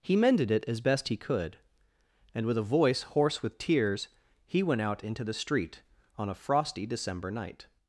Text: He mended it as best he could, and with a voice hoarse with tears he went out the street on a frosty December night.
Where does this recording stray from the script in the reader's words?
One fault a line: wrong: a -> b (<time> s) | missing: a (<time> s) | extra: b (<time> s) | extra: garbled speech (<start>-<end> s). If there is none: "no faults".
extra: into (5.0 s)